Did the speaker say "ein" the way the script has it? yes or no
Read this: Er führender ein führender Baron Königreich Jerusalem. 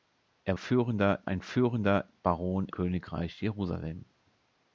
yes